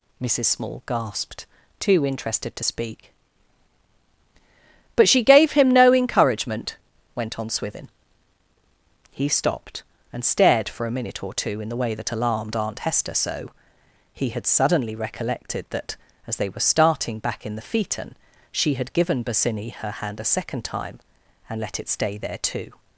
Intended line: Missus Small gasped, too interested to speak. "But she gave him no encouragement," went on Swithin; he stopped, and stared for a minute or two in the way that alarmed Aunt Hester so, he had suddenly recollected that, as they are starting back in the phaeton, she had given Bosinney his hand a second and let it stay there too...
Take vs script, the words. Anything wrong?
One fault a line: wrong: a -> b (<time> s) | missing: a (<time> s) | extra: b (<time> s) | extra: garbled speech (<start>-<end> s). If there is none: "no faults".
wrong: are -> were (16.5 s)
wrong: his -> her (19.7 s)
extra: time (20.6 s)